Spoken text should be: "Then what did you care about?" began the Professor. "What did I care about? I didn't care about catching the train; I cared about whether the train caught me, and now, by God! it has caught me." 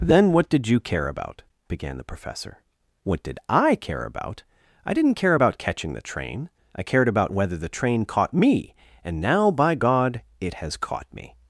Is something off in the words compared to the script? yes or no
no